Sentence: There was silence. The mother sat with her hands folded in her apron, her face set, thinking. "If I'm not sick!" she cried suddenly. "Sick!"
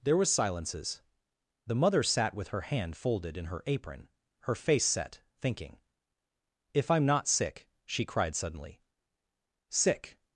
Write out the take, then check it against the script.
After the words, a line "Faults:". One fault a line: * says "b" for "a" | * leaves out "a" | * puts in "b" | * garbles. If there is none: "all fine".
There was silences. The mother sat with her hand folded in her apron, her face set, thinking. "If I'm not sick!" she cried suddenly. "Sick!"
Faults:
* says "silences" for "silence"
* says "hand" for "hands"